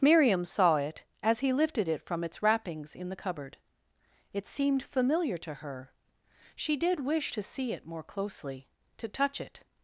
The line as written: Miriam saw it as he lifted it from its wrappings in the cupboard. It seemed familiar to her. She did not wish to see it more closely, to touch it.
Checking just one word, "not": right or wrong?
wrong